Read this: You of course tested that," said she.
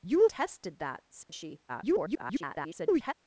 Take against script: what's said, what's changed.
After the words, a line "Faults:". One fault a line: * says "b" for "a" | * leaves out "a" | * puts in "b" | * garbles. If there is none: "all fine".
You tested that," said she. [garbled]
Faults:
* leaves out "of course"
* garbles